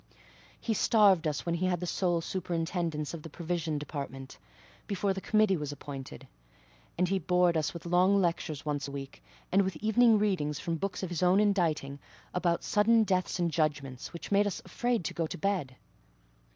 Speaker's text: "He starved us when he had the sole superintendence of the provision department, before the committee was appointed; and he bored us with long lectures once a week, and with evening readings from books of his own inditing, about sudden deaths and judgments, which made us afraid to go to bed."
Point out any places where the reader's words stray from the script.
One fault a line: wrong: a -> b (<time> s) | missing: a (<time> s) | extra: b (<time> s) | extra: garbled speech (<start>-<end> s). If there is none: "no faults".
no faults